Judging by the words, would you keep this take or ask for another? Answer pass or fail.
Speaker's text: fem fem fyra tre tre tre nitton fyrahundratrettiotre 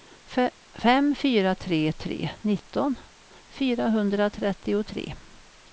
fail